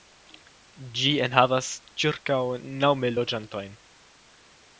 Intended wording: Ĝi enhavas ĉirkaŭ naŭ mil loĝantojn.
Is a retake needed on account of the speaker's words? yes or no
no